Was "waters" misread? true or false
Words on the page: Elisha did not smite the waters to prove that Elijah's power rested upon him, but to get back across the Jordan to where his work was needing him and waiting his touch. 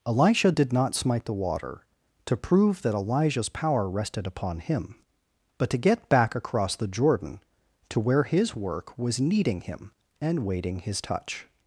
true